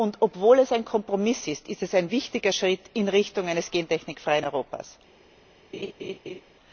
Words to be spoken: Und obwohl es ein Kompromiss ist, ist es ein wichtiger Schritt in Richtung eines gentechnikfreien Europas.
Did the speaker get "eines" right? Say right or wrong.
right